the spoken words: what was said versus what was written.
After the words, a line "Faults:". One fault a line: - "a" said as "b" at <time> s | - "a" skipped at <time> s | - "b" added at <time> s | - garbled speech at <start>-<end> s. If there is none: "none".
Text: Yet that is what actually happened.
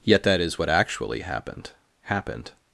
Yet that is what actually happened happened.
Faults:
- "happened" added at 2.0 s